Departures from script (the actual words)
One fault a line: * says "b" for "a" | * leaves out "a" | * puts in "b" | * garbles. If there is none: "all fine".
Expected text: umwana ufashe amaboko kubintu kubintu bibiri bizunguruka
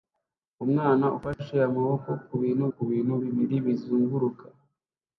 all fine